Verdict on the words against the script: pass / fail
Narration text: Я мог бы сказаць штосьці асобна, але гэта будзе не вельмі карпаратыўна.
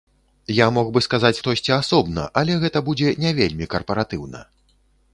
pass